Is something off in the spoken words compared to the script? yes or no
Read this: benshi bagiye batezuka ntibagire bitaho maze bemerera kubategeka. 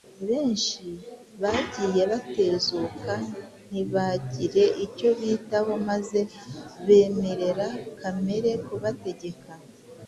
yes